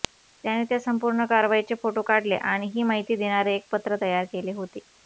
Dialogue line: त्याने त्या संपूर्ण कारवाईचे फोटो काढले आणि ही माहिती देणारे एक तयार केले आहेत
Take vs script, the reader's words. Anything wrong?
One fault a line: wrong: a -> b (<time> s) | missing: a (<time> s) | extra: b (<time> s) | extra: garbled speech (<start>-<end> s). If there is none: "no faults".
extra: पत्र (3.7 s)
wrong: आहेत -> होते (4.5 s)